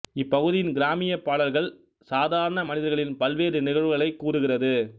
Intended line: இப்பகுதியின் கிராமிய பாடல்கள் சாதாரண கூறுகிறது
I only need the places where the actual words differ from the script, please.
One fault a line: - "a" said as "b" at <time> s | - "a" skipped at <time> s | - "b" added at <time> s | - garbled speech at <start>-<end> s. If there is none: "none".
- "மனிதர்களின் பல்வேறு நிகழ்வுகளைக்" added at 2.6 s